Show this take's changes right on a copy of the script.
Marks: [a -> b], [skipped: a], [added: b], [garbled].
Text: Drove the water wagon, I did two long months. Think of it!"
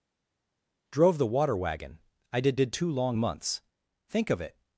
Drove the water wagon, I did [added: did] two long months. Think of it!"